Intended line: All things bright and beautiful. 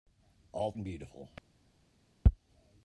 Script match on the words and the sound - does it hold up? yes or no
no